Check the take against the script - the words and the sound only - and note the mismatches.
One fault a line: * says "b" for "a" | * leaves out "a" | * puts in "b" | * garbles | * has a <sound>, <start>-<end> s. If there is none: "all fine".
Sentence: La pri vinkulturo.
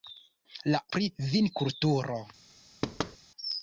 * has a thud, 2.8-3.2 s